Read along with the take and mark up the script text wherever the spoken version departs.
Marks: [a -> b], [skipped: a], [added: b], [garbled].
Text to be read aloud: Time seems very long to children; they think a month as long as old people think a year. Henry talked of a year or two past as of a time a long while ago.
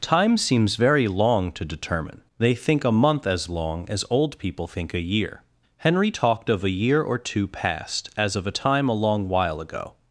Time seems very long to [children; -> determine] they think a month as long as old people think a year. Henry talked of a year or two past as of a time a long while ago.